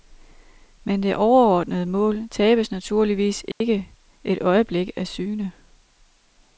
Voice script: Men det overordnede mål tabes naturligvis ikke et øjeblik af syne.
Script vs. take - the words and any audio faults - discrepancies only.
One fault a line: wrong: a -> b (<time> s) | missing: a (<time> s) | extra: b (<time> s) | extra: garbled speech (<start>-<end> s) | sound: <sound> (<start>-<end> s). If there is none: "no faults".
sound: dropout (3.5-3.6 s)